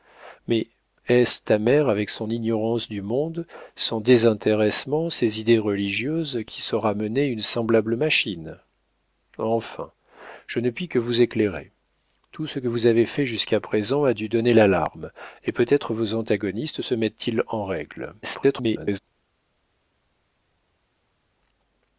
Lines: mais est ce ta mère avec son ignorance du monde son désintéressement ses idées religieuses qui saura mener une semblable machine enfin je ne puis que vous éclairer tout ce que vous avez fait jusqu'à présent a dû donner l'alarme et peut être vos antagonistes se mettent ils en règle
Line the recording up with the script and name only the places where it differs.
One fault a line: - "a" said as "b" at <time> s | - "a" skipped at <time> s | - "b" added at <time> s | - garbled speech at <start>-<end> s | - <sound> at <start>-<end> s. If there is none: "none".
- garbled speech at 18.2-19.0 s